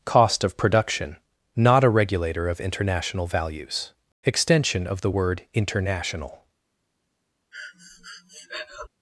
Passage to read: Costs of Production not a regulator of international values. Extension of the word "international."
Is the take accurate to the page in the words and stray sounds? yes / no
no